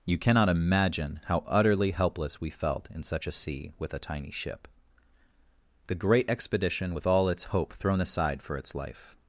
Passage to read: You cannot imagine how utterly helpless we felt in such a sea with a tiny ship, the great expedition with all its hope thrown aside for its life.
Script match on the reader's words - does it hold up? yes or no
yes